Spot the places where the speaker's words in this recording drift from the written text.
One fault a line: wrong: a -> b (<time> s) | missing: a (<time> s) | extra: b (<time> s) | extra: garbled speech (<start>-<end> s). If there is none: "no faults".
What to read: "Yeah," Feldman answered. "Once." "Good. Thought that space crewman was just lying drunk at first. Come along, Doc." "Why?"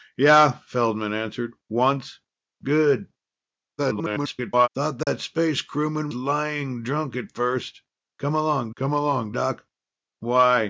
extra: garbled speech (3.8-4.7 s)
missing: was just (6.1 s)
extra: come along (8.7 s)